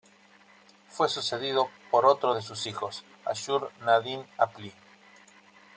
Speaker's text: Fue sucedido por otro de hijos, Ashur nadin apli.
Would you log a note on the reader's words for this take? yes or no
yes